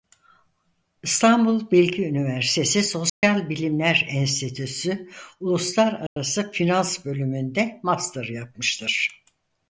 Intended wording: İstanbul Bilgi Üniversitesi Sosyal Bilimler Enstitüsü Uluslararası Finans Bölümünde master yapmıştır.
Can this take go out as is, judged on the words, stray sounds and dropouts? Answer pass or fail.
fail